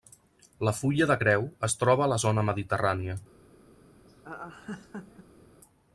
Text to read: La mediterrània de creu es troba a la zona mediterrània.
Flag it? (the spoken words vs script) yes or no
yes